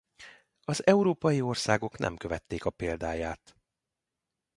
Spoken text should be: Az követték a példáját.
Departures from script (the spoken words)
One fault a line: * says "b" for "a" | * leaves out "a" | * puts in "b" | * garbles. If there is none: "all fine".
* puts in "európai országok nem"